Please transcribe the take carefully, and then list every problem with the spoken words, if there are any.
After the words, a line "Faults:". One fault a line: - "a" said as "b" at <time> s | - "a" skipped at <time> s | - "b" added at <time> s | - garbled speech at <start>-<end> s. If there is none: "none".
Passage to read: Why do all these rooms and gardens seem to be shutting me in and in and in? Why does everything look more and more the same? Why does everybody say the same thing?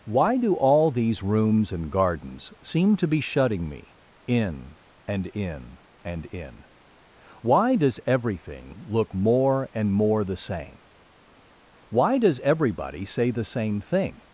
Why do all these rooms and gardens seem to be shutting me in and in and in? Why does everything look more and more the same? Why does everybody say the same thing?
Faults:
none